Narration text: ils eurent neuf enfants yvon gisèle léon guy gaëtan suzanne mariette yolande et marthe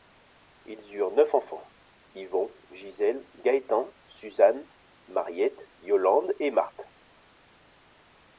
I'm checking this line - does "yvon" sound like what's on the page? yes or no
yes